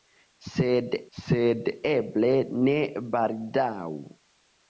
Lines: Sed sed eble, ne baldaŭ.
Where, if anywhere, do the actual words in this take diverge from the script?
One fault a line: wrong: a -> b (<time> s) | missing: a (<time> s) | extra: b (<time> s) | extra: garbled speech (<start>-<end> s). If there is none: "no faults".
no faults